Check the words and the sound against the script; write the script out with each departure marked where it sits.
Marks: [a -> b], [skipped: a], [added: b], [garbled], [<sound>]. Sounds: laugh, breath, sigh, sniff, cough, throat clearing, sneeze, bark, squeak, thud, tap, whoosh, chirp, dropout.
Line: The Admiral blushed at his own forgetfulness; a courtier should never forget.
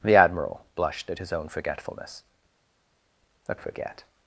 The Admiral blushed at his own forgetfulness; a [skipped: courtier should never] forget.